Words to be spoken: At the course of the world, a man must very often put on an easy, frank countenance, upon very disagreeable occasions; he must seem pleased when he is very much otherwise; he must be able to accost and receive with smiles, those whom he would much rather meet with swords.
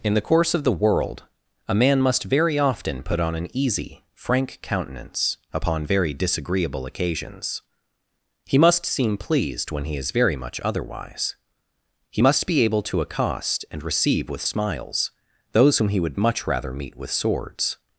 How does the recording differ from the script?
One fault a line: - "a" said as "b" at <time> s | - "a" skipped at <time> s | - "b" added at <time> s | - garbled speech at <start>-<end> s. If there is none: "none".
- "At" said as "In" at 0.0 s